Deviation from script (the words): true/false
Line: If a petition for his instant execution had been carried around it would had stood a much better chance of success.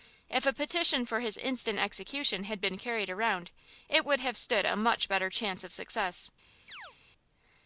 true